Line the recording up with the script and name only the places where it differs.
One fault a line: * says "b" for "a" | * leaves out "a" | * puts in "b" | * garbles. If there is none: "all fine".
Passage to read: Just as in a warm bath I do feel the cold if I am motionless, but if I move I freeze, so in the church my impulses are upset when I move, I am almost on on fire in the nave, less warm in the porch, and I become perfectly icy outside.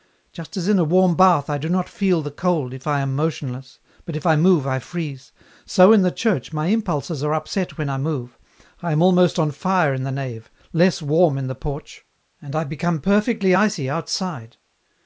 * puts in "not"
* leaves out "on"